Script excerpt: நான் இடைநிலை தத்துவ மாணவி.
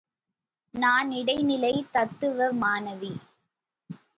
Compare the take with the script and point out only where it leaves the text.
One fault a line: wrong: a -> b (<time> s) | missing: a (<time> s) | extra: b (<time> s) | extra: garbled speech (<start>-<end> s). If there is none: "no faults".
no faults